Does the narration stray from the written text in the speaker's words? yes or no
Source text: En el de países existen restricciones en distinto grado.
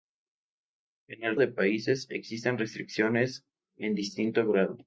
no